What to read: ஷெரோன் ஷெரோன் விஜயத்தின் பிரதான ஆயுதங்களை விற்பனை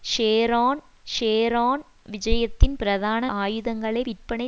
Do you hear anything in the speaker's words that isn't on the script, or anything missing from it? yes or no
no